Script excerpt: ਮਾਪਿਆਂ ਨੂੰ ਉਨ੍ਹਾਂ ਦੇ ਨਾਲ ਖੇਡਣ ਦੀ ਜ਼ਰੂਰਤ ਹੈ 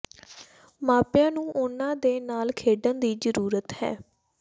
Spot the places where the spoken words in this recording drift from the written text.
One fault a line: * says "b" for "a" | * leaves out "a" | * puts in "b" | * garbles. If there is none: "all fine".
all fine